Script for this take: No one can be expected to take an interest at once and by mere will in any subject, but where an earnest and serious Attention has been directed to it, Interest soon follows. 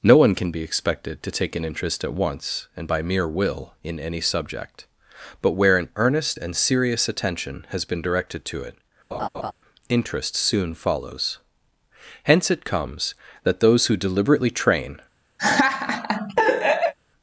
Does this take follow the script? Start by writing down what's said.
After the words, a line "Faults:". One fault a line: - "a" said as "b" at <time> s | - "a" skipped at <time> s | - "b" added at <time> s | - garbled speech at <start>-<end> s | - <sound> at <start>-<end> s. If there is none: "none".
No one can be expected to take an interest at once and by mere will in any subject, but where an earnest and serious Attention has been directed to it, Interest soon follows. Hence it comes that those who deliberately train
Faults:
- laugh at 9.1-9.5 s
- "Hence it comes that those who deliberately train" added at 12.2 s
- laugh at 15.4-16.9 s